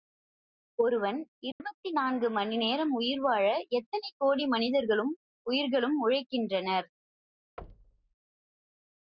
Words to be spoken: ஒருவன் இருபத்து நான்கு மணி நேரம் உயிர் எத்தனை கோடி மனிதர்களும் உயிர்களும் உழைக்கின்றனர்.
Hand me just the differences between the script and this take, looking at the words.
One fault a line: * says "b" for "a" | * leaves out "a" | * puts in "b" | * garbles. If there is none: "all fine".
* puts in "வாழ"